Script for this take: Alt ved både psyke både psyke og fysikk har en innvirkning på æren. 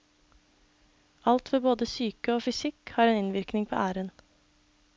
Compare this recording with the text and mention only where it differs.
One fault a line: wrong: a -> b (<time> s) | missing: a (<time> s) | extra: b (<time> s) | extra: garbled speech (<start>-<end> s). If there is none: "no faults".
missing: både psyke (2.3 s)